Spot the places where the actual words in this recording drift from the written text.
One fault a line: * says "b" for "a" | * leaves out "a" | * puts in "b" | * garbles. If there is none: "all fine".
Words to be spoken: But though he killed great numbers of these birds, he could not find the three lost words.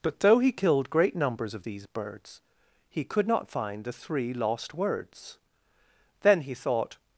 * puts in "Then he thought"